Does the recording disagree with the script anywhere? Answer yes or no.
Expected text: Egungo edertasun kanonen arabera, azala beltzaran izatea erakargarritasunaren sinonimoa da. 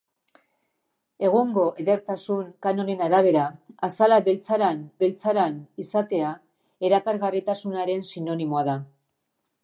yes